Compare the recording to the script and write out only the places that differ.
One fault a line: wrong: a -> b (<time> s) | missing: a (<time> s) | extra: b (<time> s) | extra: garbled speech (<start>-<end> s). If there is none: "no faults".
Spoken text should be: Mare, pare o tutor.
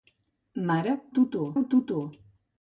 wrong: pare -> tutor (1.2 s)